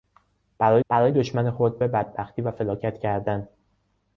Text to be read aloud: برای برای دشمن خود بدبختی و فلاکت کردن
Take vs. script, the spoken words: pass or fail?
pass